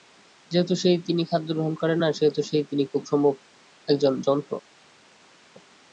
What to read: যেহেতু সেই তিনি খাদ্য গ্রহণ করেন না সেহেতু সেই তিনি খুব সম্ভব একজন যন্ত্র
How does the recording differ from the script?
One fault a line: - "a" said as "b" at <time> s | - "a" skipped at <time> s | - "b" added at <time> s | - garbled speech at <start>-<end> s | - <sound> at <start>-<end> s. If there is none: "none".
none